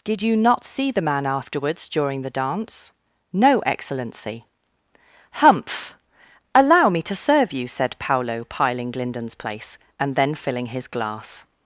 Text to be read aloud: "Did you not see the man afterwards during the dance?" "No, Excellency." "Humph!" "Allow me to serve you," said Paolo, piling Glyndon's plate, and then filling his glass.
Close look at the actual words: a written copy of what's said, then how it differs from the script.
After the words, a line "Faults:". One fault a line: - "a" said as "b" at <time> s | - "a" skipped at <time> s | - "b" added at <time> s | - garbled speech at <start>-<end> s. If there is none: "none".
"Did you not see the man afterwards during the dance?" "No, Excellency." "Humph!" "Allow me to serve you," said Paolo, piling Glyndon's place, and then filling his glass.
Faults:
- "plate" said as "place" at 9.3 s